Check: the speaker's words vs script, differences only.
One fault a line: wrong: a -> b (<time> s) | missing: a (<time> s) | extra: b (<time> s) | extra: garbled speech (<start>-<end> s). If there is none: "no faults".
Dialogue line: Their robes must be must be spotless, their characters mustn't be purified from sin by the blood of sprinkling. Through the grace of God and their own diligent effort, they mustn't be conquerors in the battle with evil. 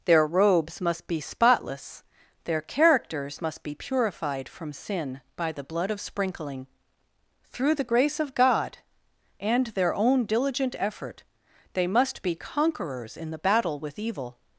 missing: must be (1.2 s)
wrong: mustn't -> must (3.4 s)
wrong: mustn't -> must (11.9 s)